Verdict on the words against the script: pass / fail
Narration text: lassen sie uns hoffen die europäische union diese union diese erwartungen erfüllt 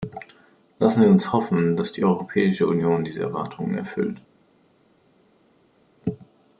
fail